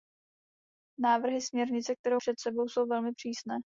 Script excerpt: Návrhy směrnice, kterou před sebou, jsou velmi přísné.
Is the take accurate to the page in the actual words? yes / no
yes